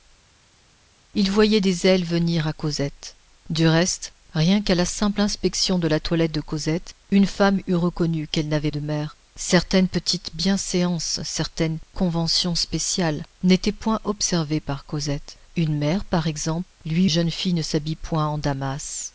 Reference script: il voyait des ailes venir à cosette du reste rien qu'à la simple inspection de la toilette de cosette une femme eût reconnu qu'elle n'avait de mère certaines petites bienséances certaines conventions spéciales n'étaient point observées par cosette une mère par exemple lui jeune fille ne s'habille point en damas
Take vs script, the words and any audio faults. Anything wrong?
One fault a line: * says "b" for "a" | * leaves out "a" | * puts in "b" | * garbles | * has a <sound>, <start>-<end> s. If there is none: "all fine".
all fine